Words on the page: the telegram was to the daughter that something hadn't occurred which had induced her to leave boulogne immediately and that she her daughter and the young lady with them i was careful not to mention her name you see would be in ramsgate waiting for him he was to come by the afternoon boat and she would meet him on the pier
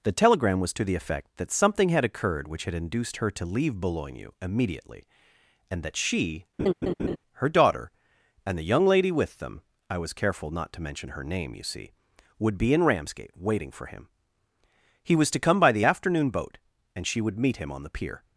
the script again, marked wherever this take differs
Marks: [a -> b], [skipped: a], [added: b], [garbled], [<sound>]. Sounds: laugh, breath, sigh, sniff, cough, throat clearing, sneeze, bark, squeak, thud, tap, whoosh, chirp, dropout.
the telegram was to the [daughter -> effect] that something [hadn't -> had] occurred which had induced her to leave boulogne immediately and that she [laugh] her daughter and the young lady with them i was careful not to mention her name you see would be in ramsgate waiting for him he was to come by the afternoon boat and she would meet him on the pier